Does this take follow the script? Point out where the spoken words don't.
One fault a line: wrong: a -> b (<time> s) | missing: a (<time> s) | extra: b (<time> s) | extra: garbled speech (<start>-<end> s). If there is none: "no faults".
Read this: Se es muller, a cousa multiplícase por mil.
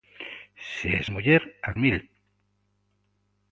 missing: cousa multiplícase por (1.8 s)